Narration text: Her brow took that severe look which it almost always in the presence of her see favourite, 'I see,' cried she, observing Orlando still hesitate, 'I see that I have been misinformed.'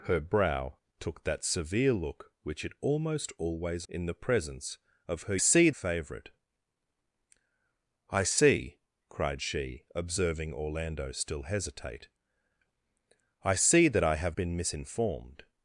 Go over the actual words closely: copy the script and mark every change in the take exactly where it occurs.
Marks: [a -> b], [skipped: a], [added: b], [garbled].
Her brow took that severe look which it almost always in the presence of her see favourite, 'I see,' cried she, observing Orlando still hesitate, 'I see that I have been misinformed.'